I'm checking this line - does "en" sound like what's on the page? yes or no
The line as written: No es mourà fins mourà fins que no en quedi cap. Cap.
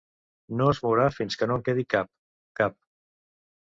yes